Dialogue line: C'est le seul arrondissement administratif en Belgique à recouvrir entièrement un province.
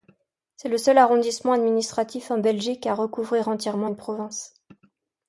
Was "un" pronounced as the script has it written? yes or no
no